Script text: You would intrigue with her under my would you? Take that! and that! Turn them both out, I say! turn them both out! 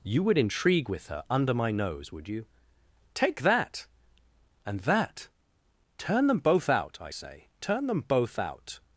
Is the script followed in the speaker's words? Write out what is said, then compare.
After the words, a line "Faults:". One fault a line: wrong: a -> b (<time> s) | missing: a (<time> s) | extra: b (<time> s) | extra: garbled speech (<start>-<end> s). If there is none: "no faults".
You would intrigue with her under my nose, would you? Take that! and that! Turn them both out, I say! turn them both out!
Faults:
extra: nose (1.7 s)